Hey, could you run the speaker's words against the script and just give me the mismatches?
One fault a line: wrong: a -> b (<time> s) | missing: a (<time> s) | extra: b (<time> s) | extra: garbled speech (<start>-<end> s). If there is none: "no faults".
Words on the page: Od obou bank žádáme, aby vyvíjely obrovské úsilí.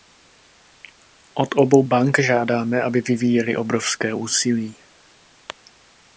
no faults